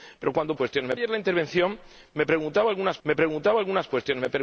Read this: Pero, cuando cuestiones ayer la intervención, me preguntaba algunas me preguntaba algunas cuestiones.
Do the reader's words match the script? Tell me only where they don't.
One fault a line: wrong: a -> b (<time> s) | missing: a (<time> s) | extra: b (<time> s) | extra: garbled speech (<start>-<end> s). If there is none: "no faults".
no faults